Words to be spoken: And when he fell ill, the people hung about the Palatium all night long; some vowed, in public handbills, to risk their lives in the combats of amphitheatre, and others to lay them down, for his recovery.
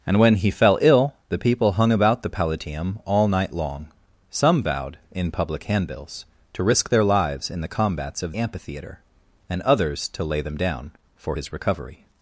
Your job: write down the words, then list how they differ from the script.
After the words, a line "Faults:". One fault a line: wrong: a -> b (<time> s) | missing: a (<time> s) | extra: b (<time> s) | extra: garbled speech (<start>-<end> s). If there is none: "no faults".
And when he fell ill, the people hung about the Palatium all night long; some vowed, in public handbills, to risk their lives in the combats of amphitheatre, and others to lay them down, for his recovery.
Faults:
no faults